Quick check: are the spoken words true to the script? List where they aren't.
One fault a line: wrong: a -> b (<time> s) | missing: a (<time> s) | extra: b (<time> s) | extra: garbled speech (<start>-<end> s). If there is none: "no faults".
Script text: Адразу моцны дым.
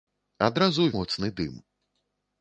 no faults